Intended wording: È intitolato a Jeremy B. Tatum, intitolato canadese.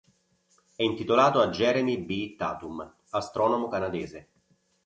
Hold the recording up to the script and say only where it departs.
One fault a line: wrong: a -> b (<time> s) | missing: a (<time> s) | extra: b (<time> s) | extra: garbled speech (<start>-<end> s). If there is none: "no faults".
wrong: intitolato -> astronomo (3.1 s)